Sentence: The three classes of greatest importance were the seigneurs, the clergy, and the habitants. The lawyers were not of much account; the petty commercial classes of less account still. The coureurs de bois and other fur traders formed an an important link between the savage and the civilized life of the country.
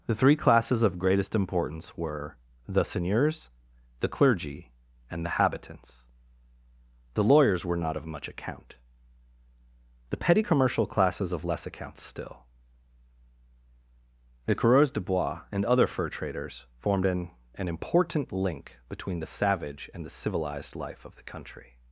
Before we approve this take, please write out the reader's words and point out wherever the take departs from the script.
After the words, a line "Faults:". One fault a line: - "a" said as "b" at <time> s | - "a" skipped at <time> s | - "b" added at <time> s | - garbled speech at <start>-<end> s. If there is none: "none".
The three classes of greatest importance were the seigneurs, the clergy, and the habitants. The lawyers were not of much account; the petty commercial classes of less account still. The coureurs de bois and other fur traders formed an an important link between the savage and the civilized life of the country.
Faults:
none